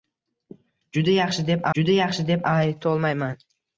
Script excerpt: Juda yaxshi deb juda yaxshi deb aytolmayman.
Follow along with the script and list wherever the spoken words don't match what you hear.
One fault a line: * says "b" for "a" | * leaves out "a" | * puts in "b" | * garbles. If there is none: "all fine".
all fine